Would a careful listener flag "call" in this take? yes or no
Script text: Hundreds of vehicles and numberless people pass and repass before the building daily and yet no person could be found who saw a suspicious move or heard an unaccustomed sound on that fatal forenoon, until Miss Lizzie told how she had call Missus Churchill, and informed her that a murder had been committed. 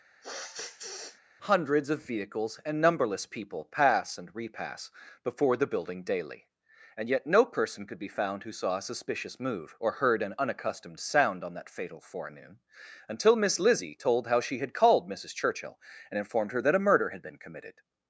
yes